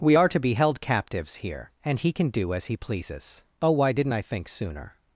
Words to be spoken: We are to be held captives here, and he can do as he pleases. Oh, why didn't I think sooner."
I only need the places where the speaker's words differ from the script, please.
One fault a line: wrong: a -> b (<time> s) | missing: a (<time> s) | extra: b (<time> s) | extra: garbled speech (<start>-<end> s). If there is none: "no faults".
no faults